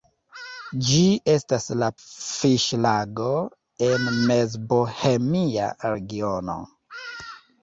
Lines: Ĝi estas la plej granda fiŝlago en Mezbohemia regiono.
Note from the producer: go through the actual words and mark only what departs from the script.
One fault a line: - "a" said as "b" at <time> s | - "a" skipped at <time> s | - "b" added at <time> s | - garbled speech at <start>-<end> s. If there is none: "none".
- "plej granda" skipped at 1.9 s